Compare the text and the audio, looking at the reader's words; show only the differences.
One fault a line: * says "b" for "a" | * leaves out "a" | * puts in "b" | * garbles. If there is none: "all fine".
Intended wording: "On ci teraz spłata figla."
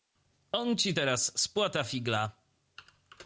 all fine